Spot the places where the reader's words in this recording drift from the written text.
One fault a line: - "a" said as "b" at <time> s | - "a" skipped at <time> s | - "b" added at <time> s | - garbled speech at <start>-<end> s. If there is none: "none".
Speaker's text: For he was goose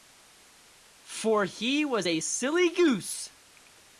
- "a silly" added at 2.0 s